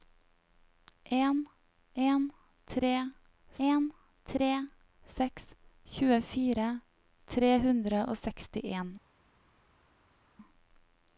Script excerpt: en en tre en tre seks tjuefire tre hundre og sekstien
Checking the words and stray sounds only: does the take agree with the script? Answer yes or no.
yes